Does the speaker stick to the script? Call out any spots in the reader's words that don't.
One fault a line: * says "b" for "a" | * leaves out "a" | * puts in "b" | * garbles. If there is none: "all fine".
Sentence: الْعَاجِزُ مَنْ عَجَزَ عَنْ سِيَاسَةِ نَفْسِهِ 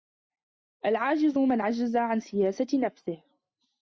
all fine